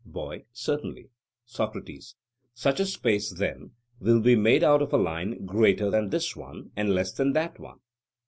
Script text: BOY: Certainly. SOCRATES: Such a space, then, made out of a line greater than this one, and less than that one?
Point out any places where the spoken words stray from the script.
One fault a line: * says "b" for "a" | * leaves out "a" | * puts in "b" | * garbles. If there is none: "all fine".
* puts in "will be"